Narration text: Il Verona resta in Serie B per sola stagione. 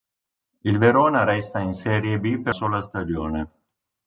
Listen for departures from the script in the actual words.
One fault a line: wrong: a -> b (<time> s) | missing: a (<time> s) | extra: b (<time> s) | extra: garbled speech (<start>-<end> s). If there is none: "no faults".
no faults